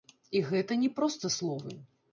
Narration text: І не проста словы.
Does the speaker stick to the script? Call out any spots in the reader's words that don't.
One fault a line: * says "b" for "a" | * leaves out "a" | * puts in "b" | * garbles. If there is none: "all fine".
* puts in "гэта"